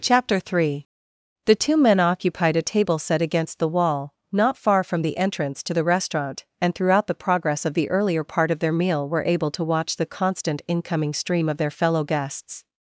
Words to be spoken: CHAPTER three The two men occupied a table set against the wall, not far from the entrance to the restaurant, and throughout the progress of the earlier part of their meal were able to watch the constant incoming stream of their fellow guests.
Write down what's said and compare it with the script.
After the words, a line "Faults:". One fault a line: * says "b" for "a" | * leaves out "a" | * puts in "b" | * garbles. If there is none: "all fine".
CHAPTER three The two men occupied a table set against the wall, not far from the entrance to the restaurant, and throughout the progress of the earlier part of their meal were able to watch the constant incoming stream of their fellow guests.
Faults:
all fine